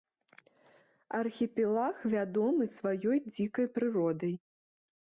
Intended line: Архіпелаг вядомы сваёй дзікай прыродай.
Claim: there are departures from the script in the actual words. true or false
false